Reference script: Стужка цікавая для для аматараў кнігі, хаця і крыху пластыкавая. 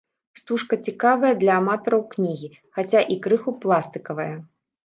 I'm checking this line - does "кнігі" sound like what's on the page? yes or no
yes